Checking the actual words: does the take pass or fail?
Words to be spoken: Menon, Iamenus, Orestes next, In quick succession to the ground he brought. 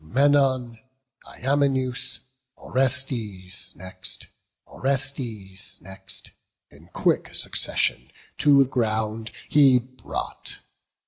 fail